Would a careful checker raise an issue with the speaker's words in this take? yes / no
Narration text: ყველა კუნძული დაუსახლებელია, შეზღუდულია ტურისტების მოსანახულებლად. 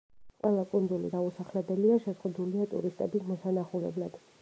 no